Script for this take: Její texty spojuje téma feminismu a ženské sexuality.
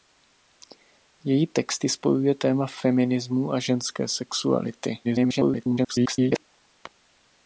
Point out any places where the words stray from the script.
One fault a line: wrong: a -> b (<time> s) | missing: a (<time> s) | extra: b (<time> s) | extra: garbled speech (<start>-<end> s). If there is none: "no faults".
extra: garbled speech (5.0-6.4 s)